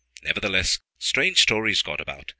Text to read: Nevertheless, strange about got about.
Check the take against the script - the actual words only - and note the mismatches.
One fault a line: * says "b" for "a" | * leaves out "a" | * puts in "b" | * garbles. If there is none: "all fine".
* says "stories" for "about"